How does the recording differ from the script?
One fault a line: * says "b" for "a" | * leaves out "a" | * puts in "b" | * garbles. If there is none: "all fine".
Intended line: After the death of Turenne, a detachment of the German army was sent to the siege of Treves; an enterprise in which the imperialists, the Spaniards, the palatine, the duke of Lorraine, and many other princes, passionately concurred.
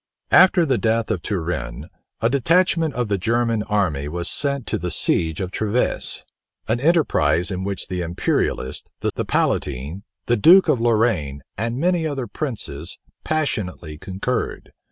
* leaves out "Spaniards"